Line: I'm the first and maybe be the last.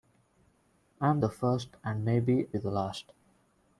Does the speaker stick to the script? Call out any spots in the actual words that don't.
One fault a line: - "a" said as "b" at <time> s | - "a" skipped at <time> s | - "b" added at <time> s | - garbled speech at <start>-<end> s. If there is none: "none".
none